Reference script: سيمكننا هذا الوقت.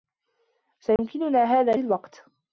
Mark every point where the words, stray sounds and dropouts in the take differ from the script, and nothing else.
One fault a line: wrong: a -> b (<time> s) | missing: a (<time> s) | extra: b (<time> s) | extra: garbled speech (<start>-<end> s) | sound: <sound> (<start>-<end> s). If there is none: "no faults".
sound: dropout (1.0-1.0 s)